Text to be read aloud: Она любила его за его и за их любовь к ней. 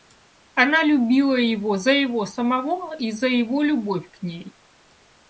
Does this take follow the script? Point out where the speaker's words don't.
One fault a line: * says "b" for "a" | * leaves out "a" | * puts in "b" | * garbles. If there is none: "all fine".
* puts in "самого"
* says "его" for "их"